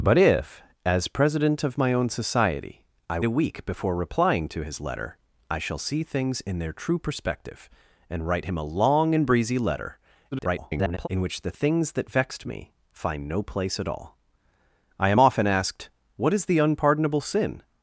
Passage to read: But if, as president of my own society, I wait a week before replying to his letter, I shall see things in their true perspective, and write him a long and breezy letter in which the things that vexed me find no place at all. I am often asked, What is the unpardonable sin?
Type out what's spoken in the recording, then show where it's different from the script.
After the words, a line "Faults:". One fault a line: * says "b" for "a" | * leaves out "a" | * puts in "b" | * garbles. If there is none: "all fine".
But if, as president of my own society, I a week before replying to his letter, I shall see things in their true perspective, and write him a long and breezy letter [garbled] in which the things that vexed me find no place at all. I am often asked, What is the unpardonable sin?
Faults:
* leaves out "wait"
* garbles